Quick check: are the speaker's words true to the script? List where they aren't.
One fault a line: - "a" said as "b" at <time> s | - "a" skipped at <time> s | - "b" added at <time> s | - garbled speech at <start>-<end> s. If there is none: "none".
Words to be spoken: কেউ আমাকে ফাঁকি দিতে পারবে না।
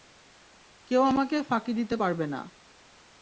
none